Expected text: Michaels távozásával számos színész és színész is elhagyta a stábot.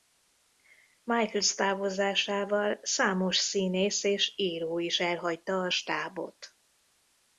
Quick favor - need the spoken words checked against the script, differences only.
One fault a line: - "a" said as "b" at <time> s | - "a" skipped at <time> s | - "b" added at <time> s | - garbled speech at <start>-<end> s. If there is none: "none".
- "színész" said as "író" at 4.3 s